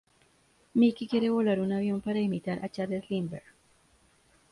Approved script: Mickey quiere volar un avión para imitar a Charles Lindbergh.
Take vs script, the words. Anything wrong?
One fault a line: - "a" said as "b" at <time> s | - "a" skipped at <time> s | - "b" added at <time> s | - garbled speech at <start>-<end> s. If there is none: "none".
none